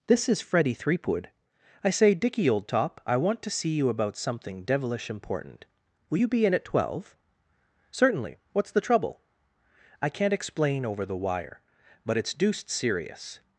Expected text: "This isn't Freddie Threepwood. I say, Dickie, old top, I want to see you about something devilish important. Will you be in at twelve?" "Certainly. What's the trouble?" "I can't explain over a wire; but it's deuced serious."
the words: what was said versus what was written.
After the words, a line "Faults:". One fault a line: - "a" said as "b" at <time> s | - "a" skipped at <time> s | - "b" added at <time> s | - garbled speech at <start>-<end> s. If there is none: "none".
"This is Freddie Threepwood. I say, Dickie, old top, I want to see you about something devilish important. Will you be in at twelve?" "Certainly. What's the trouble?" "I can't explain over the wire; but it's deuced serious."
Faults:
- "isn't" said as "is" at 0.3 s
- "a" said as "the" at 11.0 s